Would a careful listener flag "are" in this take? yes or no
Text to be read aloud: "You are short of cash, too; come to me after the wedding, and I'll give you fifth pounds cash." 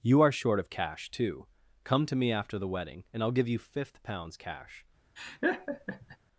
no